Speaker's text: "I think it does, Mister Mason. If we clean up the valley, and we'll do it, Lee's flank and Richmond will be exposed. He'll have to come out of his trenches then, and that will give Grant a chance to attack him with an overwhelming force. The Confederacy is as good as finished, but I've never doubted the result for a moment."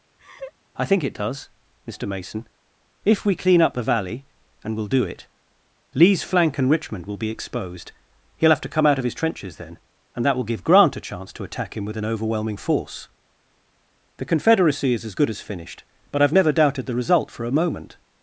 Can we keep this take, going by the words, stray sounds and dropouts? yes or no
no